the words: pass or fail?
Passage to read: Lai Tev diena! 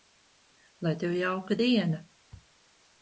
fail